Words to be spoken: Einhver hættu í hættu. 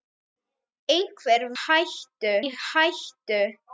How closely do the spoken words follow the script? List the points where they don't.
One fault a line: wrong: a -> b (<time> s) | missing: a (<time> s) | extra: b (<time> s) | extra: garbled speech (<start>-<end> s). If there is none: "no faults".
no faults